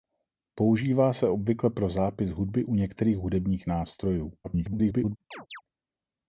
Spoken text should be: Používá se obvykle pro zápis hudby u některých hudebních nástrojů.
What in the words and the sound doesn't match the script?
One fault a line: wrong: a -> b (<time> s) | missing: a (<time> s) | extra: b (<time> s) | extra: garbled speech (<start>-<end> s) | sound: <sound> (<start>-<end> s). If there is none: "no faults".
extra: garbled speech (4.4-5.2 s)
sound: chirp (5.3-5.6 s)